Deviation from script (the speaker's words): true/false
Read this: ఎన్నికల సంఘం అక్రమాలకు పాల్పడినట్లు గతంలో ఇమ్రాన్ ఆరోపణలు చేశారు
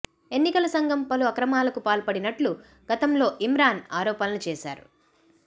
true